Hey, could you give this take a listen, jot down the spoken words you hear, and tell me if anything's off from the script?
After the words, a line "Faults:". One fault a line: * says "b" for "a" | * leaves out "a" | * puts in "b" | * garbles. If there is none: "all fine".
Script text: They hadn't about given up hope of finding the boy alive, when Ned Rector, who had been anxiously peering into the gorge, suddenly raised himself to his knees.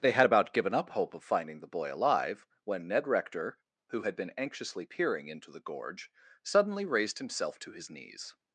They had about given up hope of finding the boy alive, when Ned Rector, who had been anxiously peering into the gorge, suddenly raised himself to his knees.
Faults:
* says "had" for "hadn't"